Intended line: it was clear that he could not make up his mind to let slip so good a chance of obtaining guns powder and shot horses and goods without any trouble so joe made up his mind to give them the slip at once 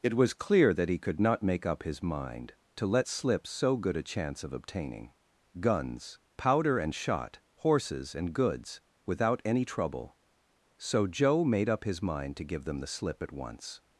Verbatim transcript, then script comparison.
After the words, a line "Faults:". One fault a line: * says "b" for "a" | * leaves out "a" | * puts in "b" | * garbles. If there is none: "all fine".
it was clear that he could not make up his mind to let slip so good a chance of obtaining guns powder and shot horses and goods without any trouble so joe made up his mind to give them the slip at once
Faults:
all fine